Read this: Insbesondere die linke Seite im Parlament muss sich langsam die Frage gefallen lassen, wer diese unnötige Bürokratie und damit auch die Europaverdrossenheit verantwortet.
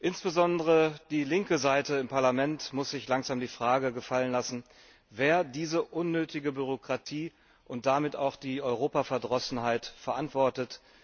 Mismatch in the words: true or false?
false